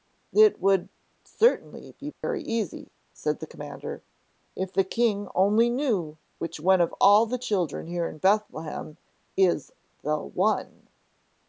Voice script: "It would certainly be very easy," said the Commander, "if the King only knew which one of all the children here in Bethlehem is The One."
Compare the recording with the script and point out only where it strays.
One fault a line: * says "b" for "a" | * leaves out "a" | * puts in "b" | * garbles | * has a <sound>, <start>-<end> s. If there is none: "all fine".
* has a dropout, 2.1-2.2 s